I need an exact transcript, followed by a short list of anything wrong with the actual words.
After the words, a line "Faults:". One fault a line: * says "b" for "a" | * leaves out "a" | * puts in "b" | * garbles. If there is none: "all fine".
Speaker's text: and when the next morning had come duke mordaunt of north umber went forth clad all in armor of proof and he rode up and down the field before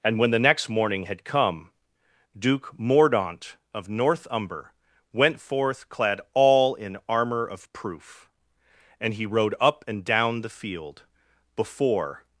and when the next morning had come duke mordaunt of north umber went forth clad all in armor of proof and he rode up and down the field before
Faults:
all fine